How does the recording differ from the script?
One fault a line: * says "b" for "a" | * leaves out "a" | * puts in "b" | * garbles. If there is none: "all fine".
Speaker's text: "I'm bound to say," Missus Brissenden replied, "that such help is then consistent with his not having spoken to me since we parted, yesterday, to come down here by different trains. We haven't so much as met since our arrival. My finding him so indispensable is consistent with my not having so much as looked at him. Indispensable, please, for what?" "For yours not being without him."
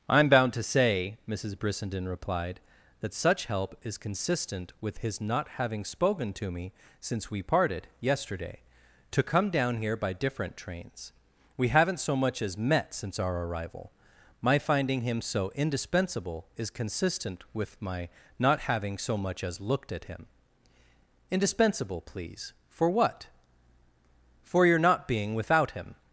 * leaves out "then"
* says "your" for "yours"